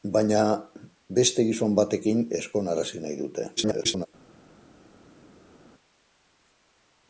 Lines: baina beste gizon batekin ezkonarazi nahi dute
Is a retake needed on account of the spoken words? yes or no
yes